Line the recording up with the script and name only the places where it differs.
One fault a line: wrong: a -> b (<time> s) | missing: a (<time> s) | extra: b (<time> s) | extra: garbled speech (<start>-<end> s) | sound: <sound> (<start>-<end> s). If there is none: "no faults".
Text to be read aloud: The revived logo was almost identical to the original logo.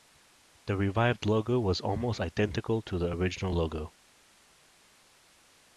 no faults